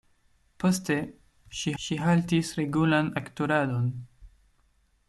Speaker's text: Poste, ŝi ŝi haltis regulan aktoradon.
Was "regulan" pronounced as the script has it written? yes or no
yes